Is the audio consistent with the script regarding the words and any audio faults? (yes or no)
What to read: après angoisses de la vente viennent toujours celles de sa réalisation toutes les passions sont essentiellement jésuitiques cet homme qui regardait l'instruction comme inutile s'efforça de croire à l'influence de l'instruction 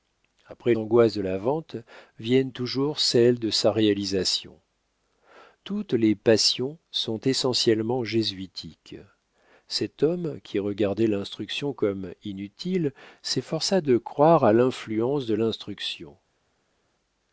yes